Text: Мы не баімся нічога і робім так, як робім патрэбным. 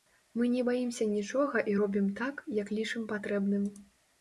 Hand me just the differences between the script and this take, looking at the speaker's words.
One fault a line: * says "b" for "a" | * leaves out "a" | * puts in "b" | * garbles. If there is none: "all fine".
* says "лічым" for "робім"